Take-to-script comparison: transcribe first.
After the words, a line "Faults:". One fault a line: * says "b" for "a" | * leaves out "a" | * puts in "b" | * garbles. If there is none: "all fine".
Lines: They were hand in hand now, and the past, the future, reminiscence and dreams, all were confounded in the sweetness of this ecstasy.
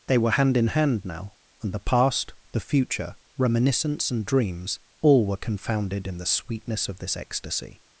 They were hand in hand now, and the past, the future, reminiscence and dreams, all were confounded in the sweetness of this ecstasy.
Faults:
all fine